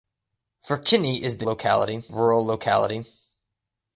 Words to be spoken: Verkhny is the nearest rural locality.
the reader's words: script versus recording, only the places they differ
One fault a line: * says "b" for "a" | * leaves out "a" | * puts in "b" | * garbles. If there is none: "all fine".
* says "locality" for "nearest"